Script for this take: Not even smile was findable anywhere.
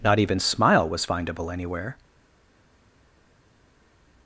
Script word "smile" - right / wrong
right